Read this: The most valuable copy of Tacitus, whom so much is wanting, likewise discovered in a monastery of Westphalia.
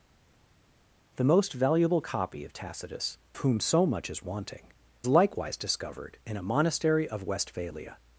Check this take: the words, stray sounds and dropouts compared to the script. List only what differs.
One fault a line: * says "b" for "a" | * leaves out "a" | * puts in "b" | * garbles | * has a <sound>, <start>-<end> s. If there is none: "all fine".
all fine